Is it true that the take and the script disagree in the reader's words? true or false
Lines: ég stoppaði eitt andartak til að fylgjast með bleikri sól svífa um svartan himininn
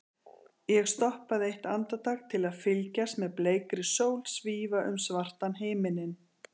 false